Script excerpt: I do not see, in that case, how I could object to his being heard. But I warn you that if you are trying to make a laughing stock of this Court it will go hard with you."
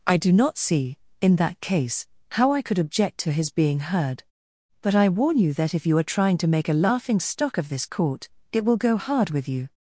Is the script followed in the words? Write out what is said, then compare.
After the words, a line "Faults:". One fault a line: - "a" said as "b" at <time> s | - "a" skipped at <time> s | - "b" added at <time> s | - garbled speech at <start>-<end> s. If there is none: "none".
I do not see, in that case, how I could object to his being heard. But I warn you that if you are trying to make a laughing stock of this Court it will go hard with you."
Faults:
none